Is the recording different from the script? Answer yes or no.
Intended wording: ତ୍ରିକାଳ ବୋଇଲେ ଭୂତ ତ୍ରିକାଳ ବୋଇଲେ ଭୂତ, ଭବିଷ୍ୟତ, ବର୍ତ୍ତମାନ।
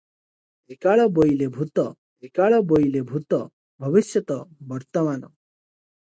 no